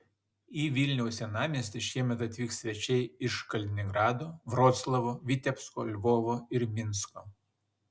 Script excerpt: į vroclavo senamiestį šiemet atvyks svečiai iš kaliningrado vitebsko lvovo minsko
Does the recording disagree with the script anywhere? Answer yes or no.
yes